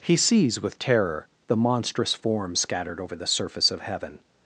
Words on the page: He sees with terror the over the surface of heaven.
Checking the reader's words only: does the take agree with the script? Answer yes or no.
no